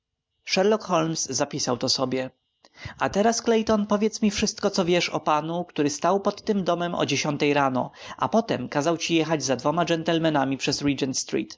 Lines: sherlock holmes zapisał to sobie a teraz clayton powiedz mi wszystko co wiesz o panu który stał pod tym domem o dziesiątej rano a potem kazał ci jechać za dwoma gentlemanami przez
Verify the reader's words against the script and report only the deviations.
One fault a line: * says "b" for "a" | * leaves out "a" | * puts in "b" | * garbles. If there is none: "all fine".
all fine